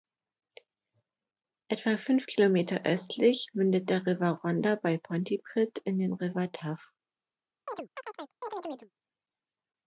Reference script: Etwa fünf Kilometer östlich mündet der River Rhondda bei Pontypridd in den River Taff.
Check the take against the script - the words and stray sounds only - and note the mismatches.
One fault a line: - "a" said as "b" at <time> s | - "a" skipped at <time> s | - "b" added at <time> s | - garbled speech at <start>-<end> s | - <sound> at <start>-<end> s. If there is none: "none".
- chirp at 7.7-8.9 s